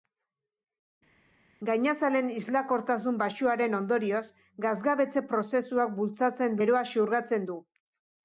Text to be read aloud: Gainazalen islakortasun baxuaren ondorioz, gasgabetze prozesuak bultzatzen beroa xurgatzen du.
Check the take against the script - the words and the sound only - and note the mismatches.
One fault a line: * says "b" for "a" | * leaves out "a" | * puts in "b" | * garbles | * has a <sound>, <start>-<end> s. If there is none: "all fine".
all fine